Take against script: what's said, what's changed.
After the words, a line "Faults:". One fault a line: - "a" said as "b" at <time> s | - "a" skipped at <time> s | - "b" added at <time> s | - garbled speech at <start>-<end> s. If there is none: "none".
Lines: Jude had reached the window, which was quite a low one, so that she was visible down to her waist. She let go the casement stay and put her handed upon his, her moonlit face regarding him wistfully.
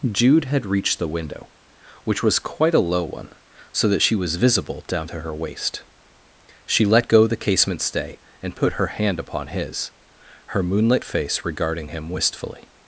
Jude had reached the window, which was quite a low one, so that she was visible down to her waist. She let go the casement stay and put her hand upon his, her moonlit face regarding him wistfully.
Faults:
- "handed" said as "hand" at 8.9 s